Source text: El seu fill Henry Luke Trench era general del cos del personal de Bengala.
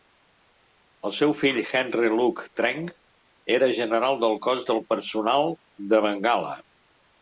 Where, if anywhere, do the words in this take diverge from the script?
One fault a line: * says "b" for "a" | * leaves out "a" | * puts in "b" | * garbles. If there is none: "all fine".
all fine